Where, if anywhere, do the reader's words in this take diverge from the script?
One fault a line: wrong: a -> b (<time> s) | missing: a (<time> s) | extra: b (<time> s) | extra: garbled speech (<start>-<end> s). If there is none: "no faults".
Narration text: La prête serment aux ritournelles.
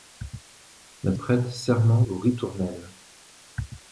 no faults